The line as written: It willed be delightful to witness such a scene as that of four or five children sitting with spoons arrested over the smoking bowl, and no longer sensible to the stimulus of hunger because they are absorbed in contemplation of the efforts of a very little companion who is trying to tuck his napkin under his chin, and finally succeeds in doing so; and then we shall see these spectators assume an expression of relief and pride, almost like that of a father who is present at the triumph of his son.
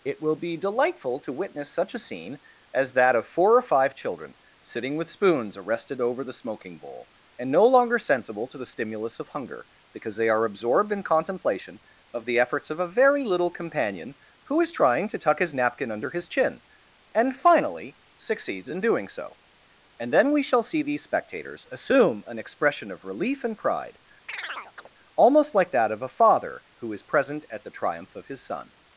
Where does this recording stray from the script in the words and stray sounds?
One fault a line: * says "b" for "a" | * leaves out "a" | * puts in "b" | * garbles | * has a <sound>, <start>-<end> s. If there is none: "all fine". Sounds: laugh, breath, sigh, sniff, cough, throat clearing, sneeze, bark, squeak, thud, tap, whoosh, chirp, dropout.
* says "will" for "willed"
* has a chirp, 24.3-24.9 s